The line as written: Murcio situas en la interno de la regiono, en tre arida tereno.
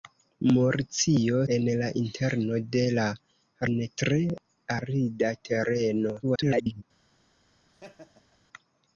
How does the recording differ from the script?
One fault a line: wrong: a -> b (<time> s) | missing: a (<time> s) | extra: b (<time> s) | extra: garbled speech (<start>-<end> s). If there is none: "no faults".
missing: situas (1.4 s)
missing: regiono (3.1 s)
extra: garbled speech (6.2-6.8 s)